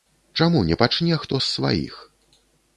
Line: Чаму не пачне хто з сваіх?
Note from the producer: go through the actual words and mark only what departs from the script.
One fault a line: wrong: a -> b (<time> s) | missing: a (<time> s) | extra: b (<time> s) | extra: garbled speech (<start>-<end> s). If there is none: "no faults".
no faults